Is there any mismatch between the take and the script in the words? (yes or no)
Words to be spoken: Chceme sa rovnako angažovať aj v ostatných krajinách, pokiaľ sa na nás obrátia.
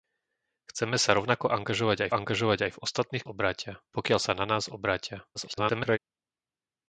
yes